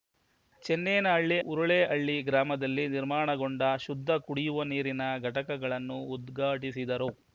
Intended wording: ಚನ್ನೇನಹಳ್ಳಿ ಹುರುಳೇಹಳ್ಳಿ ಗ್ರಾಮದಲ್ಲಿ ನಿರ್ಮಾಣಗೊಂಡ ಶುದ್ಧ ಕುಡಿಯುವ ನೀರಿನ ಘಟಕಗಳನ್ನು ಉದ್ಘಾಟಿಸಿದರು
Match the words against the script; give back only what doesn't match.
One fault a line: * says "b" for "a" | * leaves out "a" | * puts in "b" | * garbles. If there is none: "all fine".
all fine